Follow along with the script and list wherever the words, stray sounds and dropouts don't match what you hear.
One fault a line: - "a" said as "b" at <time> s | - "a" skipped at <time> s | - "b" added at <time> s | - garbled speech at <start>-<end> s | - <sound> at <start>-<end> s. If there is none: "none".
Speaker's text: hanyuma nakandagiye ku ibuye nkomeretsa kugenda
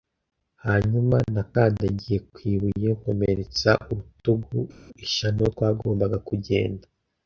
- "urutugu ishyano twagombaga" added at 3.9 s